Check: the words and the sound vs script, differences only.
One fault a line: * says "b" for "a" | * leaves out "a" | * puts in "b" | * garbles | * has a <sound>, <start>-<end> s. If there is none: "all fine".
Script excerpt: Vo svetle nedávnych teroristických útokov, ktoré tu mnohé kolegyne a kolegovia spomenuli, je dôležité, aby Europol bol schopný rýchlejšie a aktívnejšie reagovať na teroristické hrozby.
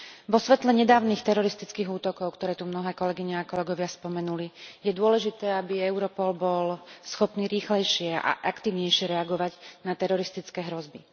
all fine